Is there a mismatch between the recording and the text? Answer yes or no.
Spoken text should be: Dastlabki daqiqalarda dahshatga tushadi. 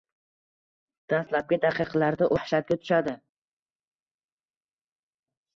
no